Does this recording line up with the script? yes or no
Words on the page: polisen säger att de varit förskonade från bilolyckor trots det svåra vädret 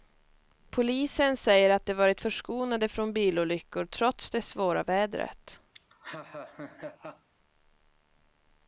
yes